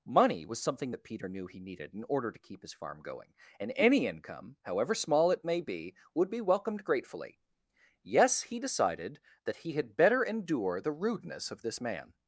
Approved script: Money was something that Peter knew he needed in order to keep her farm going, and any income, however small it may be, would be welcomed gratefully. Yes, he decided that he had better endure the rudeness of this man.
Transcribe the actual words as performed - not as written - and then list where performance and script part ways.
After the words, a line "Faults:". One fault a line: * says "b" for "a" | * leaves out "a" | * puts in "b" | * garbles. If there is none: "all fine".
Money was something that Peter knew he needed in order to keep his farm going, and any income, however small it may be, would be welcomed gratefully. Yes, he decided that he had better endure the rudeness of this man.
Faults:
* says "his" for "her"